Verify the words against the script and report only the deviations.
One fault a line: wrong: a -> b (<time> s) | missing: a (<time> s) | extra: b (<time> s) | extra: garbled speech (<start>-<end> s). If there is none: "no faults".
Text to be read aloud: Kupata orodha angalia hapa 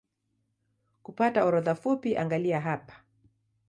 extra: fupi (1.7 s)